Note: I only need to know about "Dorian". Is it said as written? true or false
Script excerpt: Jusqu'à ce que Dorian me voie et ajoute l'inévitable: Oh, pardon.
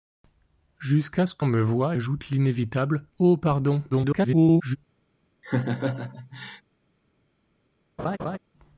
false